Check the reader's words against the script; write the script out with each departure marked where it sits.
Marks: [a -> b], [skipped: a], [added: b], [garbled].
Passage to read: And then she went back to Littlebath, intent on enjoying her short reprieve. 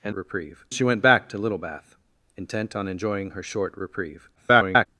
And [then -> reprieve] she went back to Littlebath, intent on enjoying her short reprieve. [garbled]